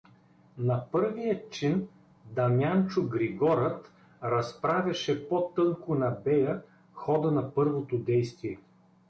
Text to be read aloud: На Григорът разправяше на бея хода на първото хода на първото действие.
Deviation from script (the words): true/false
true